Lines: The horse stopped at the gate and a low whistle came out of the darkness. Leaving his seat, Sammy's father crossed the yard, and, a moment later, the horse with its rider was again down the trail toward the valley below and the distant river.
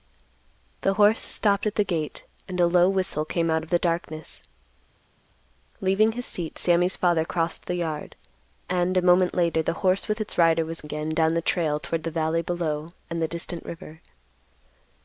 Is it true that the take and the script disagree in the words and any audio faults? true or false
false